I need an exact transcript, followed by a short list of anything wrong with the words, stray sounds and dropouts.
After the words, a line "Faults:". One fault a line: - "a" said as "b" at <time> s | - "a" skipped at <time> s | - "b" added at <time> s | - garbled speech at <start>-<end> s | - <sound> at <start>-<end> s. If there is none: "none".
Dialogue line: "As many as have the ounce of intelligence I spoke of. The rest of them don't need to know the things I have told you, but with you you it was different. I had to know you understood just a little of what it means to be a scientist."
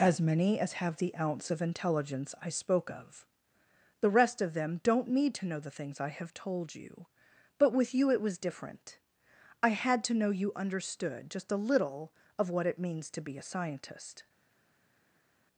"As many as have the ounce of intelligence I spoke of. The rest of them don't need to know the things I have told you, but with you it was different. I had to know you understood just a little of what it means to be a scientist."
Faults:
- "you" skipped at 8.1 s